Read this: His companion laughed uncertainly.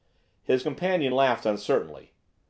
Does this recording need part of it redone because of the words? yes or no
no